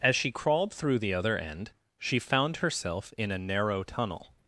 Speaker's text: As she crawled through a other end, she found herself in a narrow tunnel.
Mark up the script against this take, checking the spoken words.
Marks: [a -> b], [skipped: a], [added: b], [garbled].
As she crawled through [a -> the] other end, she found herself in a narrow tunnel.